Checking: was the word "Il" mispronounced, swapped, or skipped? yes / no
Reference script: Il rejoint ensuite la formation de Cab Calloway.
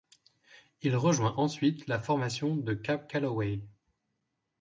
no